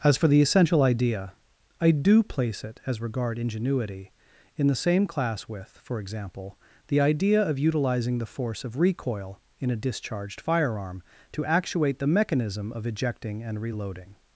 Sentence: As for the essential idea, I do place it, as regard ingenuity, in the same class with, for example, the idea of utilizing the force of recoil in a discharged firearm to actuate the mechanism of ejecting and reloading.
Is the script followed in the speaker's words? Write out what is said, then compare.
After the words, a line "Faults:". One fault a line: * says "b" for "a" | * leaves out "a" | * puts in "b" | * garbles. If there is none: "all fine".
As for the essential idea, I do place it, as regard ingenuity, in the same class with, for example, the idea of utilizing the force of recoil in a discharged firearm to actuate the mechanism of ejecting and reloading.
Faults:
all fine